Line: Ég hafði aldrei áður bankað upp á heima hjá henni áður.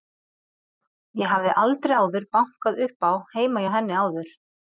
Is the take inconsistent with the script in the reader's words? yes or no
no